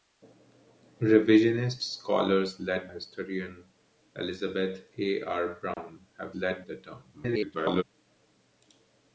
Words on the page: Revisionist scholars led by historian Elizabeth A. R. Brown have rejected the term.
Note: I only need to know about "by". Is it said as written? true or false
false